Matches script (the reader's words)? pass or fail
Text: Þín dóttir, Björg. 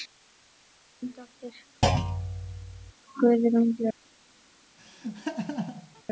fail